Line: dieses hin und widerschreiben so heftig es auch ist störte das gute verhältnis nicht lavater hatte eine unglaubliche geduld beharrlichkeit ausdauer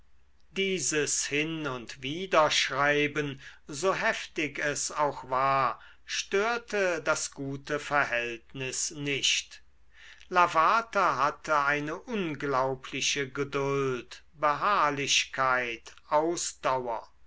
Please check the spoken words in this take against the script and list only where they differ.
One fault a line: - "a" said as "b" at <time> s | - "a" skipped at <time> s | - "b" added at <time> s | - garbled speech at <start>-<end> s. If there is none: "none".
- "ist" said as "war" at 5.3 s